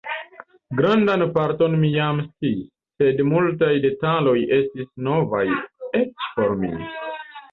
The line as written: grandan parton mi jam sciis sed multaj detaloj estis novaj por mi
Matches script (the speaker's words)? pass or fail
fail